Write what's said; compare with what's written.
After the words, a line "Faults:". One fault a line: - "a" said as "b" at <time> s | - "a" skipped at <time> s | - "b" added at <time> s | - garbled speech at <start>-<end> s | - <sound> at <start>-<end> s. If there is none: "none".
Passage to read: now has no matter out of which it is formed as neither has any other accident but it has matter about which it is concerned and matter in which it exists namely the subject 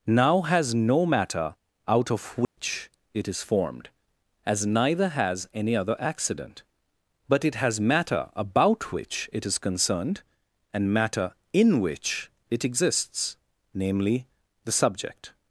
now has no matter out of which it is formed as neither has any other accident but it has matter about which it is concerned and matter in which it exists namely the subject
Faults:
- dropout at 2.4-2.6 s